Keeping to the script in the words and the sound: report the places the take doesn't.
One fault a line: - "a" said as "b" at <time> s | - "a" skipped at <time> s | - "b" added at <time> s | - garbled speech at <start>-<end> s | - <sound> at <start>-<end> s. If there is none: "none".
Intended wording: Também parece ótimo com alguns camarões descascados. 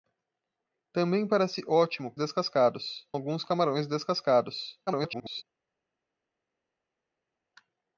- "com" said as "descascados" at 2.2 s
- garbled speech at 4.9-5.4 s